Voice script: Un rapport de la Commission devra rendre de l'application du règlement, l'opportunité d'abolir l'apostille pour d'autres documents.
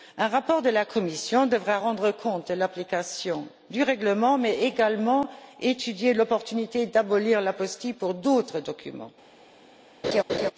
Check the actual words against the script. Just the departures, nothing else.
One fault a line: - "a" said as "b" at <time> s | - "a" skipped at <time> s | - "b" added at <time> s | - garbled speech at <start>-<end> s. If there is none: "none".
- "compte" added at 2.1 s
- "mais également étudier" added at 4.4 s